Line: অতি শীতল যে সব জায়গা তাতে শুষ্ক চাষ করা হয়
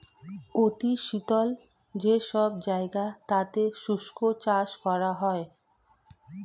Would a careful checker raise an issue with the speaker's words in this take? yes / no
no